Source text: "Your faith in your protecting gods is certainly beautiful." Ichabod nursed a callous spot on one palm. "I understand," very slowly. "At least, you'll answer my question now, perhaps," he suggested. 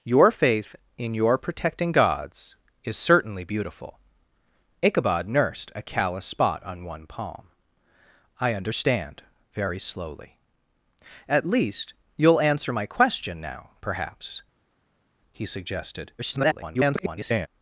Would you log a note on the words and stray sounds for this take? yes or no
yes